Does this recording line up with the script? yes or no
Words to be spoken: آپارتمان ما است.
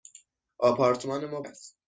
yes